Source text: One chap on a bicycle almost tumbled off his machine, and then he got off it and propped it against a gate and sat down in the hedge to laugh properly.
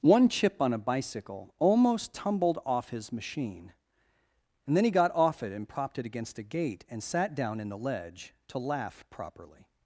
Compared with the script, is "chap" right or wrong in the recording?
wrong